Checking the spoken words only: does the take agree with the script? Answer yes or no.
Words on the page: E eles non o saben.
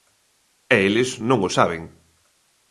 yes